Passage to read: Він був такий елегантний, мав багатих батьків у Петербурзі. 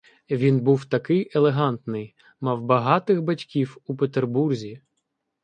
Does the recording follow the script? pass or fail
pass